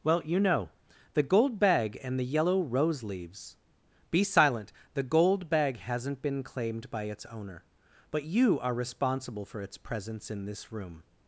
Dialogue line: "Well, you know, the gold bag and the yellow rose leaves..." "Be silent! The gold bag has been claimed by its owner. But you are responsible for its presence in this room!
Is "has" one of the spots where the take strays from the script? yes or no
yes